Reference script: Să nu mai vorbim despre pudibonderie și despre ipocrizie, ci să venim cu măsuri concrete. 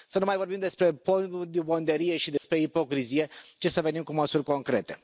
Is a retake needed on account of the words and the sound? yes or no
yes